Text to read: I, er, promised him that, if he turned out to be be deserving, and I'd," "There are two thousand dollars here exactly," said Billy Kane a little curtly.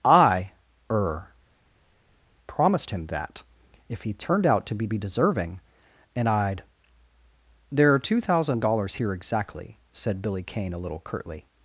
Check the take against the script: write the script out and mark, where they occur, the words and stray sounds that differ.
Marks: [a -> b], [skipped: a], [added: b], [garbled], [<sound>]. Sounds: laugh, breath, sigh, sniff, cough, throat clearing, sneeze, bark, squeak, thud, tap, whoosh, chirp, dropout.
I, er, promised him that, if he turned out to be be deserving, and I'd," "There are two thousand dollars here exactly," said Billy Kane a little curtly.